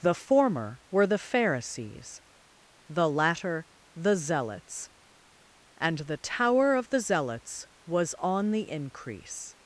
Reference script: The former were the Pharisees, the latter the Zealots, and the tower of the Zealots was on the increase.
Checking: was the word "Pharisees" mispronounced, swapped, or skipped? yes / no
no